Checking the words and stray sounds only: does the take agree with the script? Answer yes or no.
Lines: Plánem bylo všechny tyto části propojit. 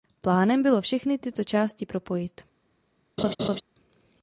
no